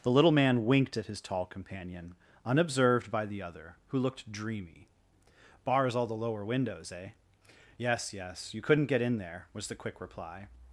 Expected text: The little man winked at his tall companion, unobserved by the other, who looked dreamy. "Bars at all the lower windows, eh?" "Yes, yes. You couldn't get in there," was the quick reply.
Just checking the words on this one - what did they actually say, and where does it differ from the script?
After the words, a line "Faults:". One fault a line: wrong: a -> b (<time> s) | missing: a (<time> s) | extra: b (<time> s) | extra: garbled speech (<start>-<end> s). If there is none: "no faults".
The little man winked at his tall companion, unobserved by the other, who looked dreamy. "Bars all the lower windows, eh?" "Yes, yes. You couldn't get in there," was the quick reply.
Faults:
missing: at (6.0 s)